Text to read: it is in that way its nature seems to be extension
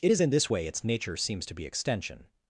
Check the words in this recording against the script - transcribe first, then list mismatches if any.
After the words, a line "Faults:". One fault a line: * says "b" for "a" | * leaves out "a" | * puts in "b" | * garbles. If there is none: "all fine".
it is in this way its nature seems to be extension
Faults:
* says "this" for "that"